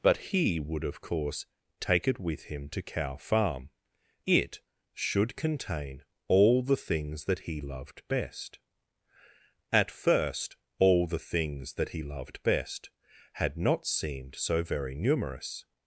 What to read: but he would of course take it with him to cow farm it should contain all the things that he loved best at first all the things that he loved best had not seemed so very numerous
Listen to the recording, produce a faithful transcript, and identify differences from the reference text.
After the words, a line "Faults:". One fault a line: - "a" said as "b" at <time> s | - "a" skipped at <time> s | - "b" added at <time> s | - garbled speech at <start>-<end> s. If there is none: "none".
but he would of course take it with him to cow farm it should contain all the things that he loved best at first all the things that he loved best had not seemed so very numerous
Faults:
none